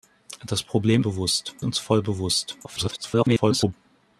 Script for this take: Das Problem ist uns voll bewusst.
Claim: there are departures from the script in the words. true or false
true